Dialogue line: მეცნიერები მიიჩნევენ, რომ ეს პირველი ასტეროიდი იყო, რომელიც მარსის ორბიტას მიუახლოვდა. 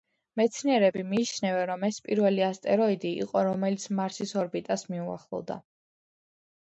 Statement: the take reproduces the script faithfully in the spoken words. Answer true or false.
true